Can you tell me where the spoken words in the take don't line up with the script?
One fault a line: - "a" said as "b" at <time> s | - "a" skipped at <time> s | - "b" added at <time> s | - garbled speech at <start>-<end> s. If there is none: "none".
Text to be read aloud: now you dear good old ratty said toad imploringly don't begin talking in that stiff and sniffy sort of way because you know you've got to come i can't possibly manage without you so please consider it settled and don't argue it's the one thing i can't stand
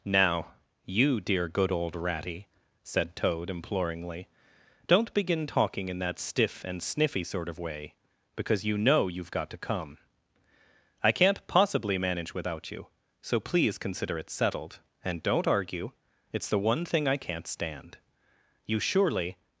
- "you surely" added at 18.6 s